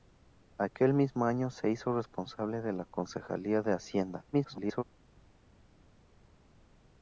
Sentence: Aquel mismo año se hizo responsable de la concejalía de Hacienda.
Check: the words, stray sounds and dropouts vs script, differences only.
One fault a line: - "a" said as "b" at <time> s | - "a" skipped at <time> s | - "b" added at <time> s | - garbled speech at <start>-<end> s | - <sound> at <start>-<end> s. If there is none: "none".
- garbled speech at 4.3-4.8 s